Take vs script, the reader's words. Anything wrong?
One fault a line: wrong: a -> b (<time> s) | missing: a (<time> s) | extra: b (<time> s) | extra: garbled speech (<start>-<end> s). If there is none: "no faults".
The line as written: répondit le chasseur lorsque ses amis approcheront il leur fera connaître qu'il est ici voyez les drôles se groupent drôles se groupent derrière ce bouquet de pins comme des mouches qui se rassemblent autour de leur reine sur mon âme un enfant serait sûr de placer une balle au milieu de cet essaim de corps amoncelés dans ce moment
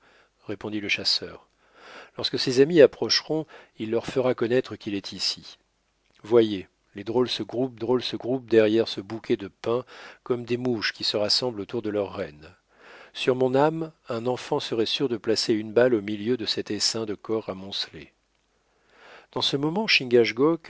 no faults